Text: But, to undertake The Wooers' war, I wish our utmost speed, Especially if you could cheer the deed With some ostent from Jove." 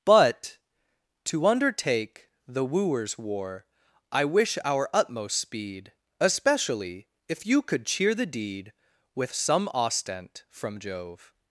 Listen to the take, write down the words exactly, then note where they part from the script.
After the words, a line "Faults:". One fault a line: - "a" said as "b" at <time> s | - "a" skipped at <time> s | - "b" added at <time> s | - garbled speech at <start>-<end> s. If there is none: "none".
But, to undertake The Wooers' war, I wish our utmost speed, Especially if you could cheer the deed With some ostent from Jove."
Faults:
none